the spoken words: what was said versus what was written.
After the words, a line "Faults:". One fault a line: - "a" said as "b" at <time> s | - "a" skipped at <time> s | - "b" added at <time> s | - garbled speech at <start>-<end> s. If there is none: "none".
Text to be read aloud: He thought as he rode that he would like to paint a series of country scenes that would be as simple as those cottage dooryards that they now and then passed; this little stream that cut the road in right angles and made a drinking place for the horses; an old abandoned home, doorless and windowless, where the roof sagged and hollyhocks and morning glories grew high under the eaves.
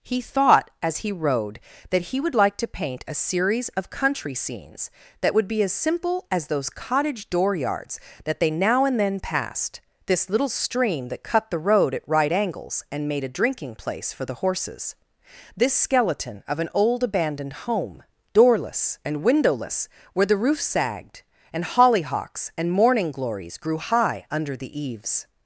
He thought as he rode that he would like to paint a series of country scenes that would be as simple as those cottage dooryards that they now and then passed; this little stream that cut the road at right angles and made a drinking place for the horses; this skeleton of an old abandoned home, doorless and windowless, where the roof sagged and hollyhocks and morning glories grew high under the eaves.
Faults:
- "in" said as "at" at 11.9 s
- "this skeleton of" added at 15.6 s